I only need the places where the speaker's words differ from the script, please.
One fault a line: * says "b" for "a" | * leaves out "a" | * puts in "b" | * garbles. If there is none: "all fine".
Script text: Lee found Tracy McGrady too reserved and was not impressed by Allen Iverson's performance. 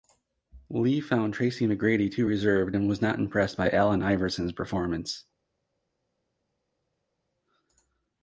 all fine